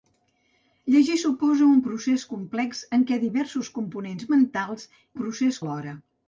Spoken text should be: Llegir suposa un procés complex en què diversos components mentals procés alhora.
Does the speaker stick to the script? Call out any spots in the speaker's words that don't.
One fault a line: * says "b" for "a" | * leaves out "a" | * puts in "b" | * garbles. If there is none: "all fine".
all fine